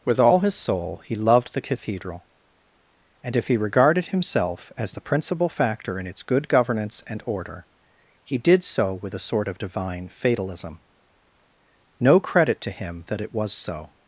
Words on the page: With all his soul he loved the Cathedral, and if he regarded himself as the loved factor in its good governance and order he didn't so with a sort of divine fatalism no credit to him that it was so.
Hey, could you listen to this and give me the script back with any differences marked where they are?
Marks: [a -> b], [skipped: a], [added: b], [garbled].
With all his soul he loved the Cathedral, and if he regarded himself as the [loved -> principal] factor in its good governance and order he [didn't -> did] so with a sort of divine fatalism no credit to him that it was so.